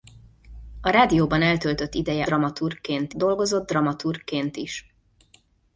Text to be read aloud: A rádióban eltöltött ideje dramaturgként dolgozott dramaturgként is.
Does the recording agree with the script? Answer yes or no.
yes